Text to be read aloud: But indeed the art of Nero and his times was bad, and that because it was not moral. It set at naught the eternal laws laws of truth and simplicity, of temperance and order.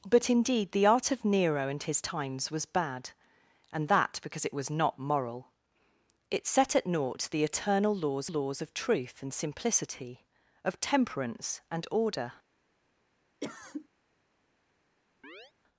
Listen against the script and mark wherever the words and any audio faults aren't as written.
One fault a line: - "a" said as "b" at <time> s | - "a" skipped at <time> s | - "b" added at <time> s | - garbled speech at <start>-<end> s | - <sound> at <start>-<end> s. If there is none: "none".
- cough at 13.4-13.9 s
- chirp at 15.2-15.5 s